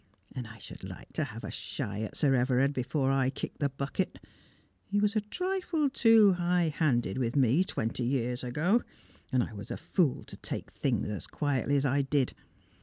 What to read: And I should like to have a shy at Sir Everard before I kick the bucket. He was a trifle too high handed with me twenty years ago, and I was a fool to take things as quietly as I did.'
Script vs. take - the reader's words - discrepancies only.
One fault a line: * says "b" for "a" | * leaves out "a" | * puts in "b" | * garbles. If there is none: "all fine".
all fine